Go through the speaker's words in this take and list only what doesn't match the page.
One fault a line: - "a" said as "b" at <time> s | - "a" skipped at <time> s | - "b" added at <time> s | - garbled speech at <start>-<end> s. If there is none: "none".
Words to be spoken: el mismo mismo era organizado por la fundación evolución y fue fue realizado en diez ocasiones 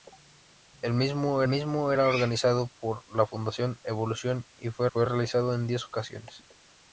none